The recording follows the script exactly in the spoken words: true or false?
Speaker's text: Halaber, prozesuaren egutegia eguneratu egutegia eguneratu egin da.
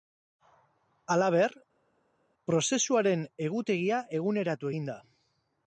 false